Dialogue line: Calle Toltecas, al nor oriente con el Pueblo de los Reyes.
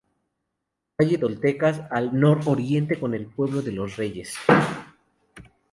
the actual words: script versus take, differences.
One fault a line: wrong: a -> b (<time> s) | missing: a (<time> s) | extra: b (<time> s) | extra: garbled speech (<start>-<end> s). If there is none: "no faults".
no faults